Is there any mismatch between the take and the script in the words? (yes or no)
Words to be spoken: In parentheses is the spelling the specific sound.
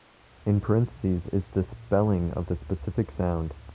yes